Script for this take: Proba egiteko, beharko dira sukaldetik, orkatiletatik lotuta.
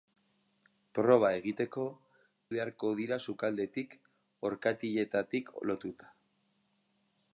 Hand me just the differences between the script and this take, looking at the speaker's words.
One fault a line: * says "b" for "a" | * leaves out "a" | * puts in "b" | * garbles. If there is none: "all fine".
all fine